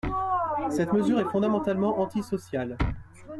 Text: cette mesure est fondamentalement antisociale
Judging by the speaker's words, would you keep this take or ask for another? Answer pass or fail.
pass